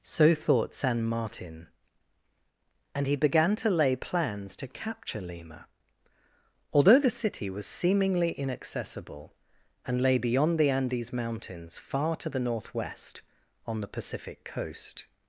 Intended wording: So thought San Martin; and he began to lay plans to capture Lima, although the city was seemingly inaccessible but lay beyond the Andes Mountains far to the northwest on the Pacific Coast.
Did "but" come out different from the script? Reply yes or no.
yes